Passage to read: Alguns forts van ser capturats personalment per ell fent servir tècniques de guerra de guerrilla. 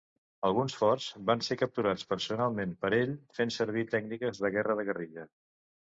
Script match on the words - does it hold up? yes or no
yes